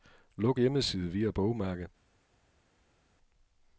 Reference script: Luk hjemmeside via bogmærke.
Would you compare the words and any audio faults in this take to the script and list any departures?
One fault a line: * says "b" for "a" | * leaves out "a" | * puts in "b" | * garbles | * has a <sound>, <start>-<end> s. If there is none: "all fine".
all fine